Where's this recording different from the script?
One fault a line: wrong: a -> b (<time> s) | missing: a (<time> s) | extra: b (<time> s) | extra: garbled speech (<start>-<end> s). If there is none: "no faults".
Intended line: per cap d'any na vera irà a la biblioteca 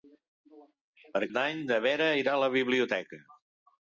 missing: cap (1.2 s)